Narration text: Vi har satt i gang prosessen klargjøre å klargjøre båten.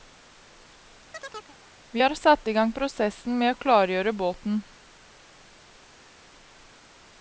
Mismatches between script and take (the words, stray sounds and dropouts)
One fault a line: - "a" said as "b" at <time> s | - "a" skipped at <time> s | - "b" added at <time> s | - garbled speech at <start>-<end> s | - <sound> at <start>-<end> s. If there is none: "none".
- chirp at 1.1-1.6 s
- "klargjøre" said as "med" at 3.4 s